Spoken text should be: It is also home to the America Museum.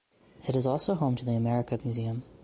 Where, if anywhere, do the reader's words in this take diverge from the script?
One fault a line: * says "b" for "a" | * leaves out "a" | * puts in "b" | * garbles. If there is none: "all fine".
all fine